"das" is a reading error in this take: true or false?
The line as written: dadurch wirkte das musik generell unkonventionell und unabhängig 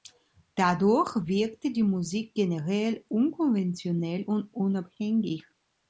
true